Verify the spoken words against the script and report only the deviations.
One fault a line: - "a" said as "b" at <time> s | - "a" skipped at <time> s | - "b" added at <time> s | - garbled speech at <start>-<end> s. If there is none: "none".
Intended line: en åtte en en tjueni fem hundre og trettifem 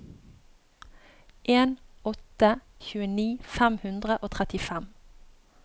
- "en en" skipped at 2.5 s